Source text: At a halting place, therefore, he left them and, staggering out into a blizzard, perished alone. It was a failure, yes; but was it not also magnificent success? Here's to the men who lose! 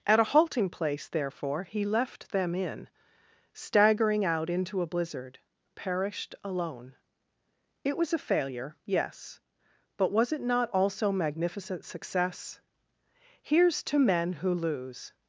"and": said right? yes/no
no